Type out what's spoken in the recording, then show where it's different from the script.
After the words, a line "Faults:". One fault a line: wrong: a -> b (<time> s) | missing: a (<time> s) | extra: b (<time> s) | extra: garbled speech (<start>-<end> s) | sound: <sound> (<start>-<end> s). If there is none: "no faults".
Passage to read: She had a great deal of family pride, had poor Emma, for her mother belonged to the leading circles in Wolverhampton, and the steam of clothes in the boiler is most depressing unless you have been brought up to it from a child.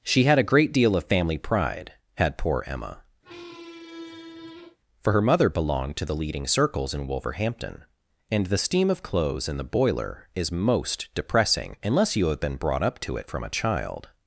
She had a great deal of family pride, had poor Emma, for her mother belonged to the leading circles in Wolverhampton, and the steam of clothes in the boiler is most depressing unless you have been brought up to it from a child.
Faults:
sound: squeak (3.2-4.8 s)